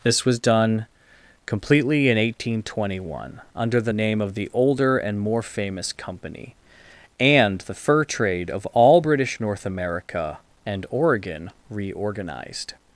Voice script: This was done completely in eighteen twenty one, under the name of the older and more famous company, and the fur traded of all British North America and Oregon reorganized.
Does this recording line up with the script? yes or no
no